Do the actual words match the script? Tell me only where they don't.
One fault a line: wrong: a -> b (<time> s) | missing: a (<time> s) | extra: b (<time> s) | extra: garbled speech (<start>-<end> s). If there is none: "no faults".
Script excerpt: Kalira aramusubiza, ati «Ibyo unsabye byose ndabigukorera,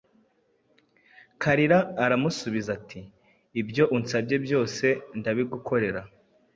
no faults